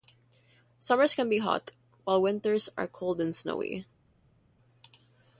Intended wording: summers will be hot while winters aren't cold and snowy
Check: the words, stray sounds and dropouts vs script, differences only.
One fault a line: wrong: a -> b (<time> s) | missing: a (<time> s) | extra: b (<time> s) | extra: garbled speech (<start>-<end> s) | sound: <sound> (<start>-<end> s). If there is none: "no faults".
wrong: will -> can (1.1 s)
wrong: aren't -> are (2.8 s)